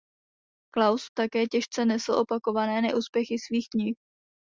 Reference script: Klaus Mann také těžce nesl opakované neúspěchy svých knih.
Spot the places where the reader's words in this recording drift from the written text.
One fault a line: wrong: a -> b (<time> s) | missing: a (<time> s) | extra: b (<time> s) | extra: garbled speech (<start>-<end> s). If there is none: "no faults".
missing: Mann (1.1 s)